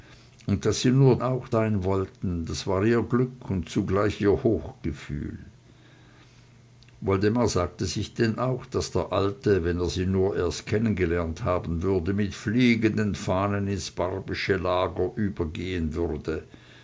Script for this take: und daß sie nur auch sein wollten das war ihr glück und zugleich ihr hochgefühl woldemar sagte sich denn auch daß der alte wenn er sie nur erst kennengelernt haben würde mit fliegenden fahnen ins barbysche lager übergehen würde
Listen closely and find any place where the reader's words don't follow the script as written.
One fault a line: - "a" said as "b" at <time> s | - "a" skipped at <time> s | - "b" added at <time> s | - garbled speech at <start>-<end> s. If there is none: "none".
none